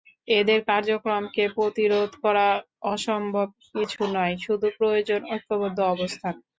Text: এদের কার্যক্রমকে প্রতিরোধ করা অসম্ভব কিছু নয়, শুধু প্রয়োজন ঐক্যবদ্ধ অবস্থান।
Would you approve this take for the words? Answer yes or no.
yes